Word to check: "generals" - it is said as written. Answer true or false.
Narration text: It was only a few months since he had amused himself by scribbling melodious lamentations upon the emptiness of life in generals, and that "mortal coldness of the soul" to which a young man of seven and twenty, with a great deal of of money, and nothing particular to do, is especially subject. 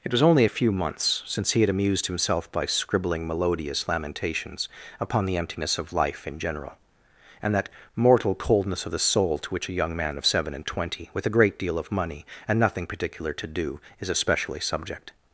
false